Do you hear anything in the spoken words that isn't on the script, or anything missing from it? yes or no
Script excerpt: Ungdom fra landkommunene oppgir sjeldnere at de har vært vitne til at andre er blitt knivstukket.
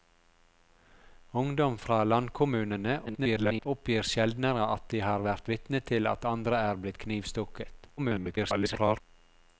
yes